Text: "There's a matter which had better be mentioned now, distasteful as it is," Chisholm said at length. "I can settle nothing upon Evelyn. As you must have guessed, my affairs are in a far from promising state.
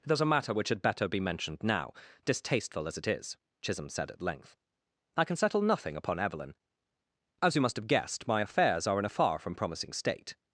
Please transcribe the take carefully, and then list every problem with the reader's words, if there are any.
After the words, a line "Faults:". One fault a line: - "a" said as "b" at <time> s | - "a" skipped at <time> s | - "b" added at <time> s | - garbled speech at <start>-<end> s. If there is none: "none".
"There's a matter which had better be mentioned now, distasteful as it is," Chisholm said at length. "I can settle nothing upon Evelyn. As you must have guessed, my affairs are in a far from promising state.
Faults:
none